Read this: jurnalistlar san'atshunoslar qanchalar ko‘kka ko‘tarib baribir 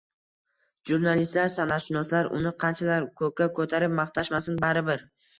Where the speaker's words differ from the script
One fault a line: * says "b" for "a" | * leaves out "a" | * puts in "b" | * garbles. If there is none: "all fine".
* puts in "uni"
* puts in "maqtashmasin"